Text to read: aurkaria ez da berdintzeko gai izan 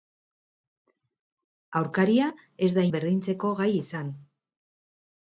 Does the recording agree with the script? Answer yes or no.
yes